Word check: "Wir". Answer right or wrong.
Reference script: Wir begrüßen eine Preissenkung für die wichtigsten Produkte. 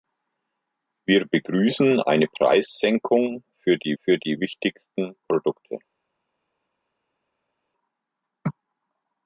right